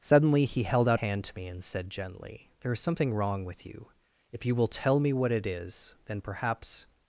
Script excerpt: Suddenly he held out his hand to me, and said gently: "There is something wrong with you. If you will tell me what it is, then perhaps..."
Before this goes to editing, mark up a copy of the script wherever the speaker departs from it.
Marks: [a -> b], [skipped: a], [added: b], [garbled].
Suddenly he held out [skipped: his] hand to me, and said gently: "There is something wrong with you. If you will tell me what it is, then perhaps..."